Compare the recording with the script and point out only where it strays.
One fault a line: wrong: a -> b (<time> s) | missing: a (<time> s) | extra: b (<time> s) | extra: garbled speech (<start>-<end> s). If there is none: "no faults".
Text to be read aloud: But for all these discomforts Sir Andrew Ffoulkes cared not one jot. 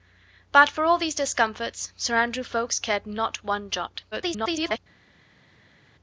extra: garbled speech (4.1-4.8 s)